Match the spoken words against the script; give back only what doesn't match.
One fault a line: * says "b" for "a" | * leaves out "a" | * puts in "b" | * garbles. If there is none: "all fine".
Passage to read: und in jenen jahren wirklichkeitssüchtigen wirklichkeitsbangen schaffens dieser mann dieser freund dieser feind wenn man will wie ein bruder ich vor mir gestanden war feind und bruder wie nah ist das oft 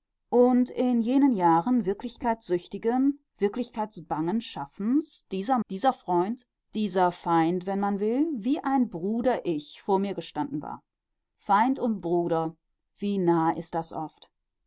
* leaves out "mann"